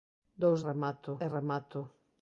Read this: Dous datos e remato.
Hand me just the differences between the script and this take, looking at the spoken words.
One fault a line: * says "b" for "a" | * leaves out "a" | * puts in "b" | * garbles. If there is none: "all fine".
* says "remato" for "datos"